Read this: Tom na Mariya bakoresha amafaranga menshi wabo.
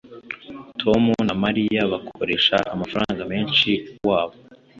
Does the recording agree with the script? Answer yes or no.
yes